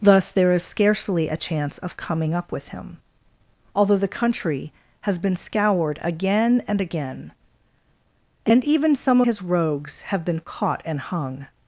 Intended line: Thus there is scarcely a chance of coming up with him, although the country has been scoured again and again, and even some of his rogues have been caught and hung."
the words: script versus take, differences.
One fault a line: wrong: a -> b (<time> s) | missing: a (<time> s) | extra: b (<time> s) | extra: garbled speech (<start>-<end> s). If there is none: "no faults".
missing: of (9.2 s)